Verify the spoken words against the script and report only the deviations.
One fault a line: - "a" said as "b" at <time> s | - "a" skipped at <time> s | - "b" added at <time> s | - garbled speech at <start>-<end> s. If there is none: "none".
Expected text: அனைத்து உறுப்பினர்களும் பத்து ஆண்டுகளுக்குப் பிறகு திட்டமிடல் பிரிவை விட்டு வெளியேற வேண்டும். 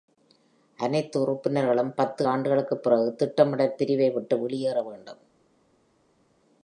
none